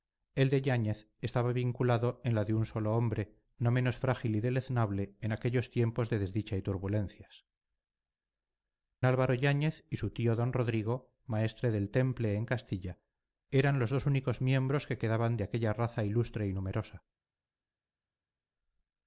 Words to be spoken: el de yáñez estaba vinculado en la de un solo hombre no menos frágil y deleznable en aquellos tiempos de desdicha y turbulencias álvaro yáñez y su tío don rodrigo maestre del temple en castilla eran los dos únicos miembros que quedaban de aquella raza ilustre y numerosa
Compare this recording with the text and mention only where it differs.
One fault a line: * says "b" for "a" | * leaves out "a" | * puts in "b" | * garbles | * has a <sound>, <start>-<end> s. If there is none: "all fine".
all fine